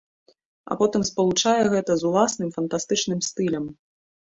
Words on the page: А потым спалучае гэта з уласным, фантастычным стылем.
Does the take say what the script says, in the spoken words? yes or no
yes